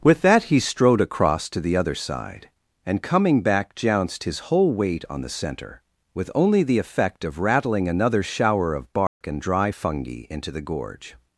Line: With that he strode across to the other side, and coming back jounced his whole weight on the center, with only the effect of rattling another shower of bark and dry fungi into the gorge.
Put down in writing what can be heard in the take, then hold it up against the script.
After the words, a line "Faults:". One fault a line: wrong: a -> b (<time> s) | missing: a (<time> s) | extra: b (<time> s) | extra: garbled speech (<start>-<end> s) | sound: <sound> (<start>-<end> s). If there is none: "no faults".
With that he strode across to the other side, and coming back jounced his whole weight on the center, with only the effect of rattling another shower of bark and dry fungi into the gorge.
Faults:
sound: dropout (9.1-9.2 s)